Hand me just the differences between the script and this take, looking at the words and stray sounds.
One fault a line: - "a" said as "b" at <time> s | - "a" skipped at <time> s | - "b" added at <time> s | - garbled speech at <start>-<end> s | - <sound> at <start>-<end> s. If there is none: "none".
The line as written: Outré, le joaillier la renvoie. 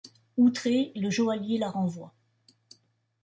none